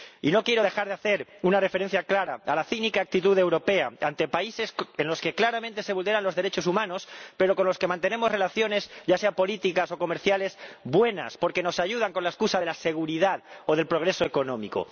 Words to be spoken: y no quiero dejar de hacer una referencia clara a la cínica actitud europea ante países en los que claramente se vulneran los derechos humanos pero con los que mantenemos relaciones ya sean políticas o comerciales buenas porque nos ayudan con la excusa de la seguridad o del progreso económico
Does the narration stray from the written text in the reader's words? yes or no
no